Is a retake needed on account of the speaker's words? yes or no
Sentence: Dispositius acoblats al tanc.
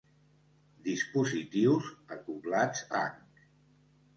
yes